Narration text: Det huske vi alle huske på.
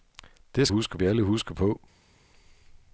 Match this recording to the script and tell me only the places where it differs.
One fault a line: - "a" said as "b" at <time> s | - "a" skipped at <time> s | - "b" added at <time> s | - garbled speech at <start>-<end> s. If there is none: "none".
none